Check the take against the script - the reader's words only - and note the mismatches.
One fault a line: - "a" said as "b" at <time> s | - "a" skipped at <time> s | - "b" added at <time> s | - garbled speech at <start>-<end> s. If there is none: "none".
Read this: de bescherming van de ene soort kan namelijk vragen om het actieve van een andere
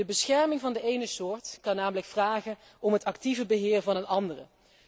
- "beheer" added at 3.5 s